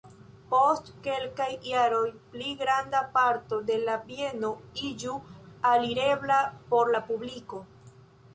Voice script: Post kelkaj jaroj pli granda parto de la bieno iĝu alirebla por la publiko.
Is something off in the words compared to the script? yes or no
no